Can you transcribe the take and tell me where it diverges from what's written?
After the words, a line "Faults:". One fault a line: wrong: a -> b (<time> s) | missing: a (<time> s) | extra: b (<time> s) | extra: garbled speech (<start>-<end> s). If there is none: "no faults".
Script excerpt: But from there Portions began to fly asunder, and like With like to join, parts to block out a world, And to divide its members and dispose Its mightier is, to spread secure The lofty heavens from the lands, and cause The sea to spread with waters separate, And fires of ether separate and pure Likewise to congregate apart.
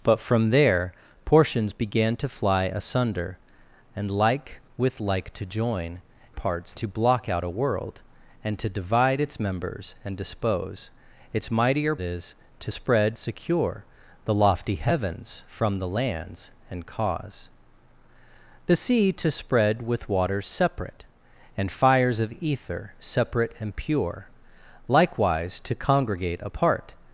But from there Portions began to fly asunder, and like With like to join, parts to block out a world, And to divide its members and dispose Its mightier is, to spread secure The lofty heavens from the lands, and cause The sea to spread with waters separate, And fires of ether separate and pure Likewise to congregate apart.
Faults:
no faults